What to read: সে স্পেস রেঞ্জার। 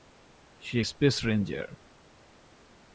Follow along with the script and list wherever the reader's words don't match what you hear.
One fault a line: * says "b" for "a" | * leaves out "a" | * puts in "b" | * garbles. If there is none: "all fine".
all fine